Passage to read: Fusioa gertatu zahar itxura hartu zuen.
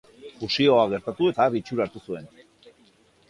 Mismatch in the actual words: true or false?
false